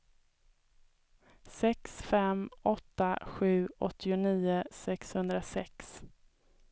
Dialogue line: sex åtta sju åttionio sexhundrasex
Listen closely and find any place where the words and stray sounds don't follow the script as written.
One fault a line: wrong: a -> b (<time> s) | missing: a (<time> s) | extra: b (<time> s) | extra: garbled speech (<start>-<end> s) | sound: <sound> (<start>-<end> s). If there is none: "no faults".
extra: fem (2.0 s)